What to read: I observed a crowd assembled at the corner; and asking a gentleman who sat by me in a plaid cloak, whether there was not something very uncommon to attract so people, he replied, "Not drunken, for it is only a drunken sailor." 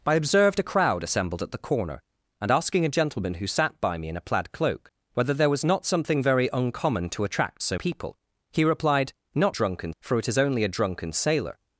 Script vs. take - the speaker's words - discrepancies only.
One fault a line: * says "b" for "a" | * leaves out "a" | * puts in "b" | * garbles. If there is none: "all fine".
all fine